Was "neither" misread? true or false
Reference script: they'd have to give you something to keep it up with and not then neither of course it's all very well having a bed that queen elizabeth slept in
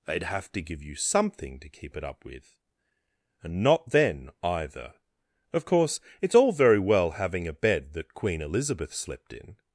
true